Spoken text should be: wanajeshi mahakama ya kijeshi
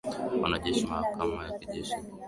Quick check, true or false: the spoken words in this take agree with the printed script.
true